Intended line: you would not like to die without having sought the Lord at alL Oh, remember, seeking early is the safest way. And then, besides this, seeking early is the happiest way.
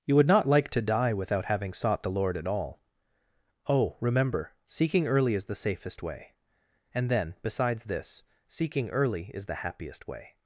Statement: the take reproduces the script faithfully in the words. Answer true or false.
true